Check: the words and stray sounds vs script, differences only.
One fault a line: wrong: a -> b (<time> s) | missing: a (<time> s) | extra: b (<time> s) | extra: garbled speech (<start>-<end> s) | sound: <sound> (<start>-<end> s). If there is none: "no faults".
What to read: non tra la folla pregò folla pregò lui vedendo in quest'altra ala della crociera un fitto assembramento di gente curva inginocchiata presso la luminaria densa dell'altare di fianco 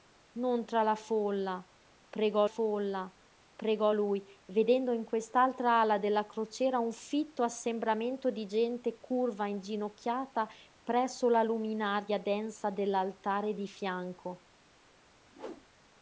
sound: whoosh (15.3-15.7 s)